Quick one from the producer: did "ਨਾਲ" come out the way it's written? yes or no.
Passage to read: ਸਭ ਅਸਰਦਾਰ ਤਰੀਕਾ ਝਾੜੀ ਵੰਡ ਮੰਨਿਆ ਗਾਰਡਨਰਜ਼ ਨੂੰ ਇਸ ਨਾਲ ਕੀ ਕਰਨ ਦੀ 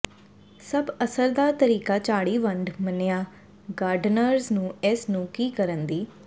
no